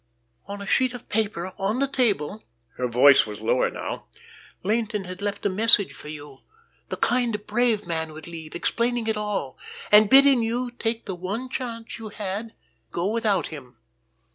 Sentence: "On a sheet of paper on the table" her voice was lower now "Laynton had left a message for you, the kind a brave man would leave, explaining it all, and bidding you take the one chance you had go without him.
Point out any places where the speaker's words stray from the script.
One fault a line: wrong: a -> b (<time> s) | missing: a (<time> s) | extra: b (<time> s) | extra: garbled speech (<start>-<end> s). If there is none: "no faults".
no faults